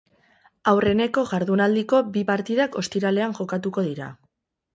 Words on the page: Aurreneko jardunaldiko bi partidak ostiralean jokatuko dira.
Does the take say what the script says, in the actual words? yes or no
yes